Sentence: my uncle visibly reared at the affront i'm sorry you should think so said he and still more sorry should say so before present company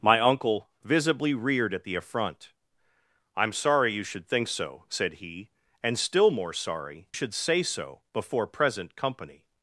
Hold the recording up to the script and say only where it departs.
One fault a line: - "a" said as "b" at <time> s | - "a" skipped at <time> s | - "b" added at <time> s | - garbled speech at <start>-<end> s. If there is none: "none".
none